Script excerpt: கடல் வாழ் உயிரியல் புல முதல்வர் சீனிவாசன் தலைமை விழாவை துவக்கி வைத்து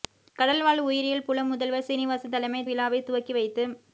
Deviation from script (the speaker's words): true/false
false